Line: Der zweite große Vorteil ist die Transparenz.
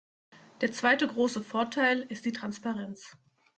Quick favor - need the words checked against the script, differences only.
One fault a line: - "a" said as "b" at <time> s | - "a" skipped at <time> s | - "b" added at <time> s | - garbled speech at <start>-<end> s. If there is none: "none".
none